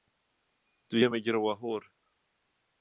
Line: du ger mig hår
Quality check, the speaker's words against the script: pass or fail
fail